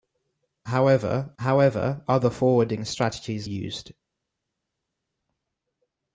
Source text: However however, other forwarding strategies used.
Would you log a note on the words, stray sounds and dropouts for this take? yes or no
no